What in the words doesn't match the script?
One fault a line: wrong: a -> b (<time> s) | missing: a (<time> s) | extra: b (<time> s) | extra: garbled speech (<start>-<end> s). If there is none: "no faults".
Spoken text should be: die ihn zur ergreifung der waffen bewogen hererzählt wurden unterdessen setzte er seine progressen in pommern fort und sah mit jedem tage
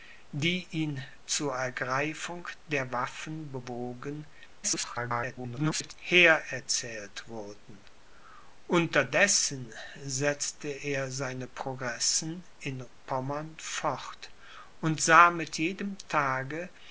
extra: garbled speech (4.6-5.9 s)